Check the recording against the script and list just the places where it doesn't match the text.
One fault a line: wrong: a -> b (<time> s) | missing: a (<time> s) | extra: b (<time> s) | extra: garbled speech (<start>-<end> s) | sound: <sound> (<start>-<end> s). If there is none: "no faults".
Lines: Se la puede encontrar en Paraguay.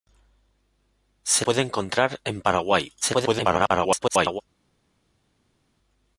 missing: la (1.4 s)
extra: garbled speech (3.0-4.4 s)